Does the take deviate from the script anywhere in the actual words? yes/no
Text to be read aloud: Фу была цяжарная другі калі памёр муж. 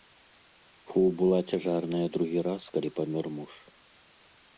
yes